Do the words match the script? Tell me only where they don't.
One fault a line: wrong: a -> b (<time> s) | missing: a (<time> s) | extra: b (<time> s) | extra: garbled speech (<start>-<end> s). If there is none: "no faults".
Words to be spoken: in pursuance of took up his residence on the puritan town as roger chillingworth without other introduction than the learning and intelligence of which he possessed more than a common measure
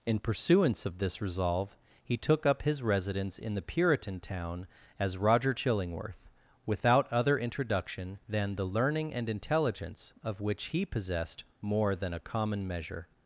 extra: this resolve he (1.0 s)
wrong: on -> in (3.4 s)